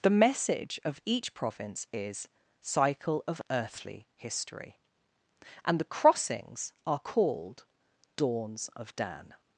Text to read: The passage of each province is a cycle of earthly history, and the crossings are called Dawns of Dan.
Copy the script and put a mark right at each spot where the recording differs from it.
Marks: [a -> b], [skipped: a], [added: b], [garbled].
The [passage -> message] of each province is [skipped: a] cycle of earthly history, and the crossings are called Dawns of Dan.